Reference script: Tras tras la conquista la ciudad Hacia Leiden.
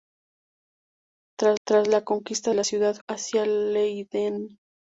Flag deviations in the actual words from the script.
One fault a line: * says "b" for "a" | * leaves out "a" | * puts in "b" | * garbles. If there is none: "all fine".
all fine